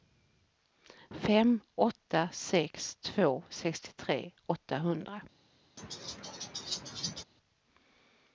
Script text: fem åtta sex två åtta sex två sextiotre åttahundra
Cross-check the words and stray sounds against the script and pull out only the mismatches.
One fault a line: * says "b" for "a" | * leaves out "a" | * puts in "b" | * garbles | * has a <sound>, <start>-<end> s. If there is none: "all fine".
* leaves out "åtta sex två"
* has a laugh, 5.8-7.2 s